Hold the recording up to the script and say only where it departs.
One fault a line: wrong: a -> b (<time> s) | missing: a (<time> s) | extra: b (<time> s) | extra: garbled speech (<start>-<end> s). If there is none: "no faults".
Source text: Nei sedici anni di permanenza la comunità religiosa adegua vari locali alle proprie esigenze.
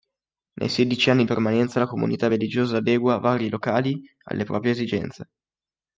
missing: di (1.2 s)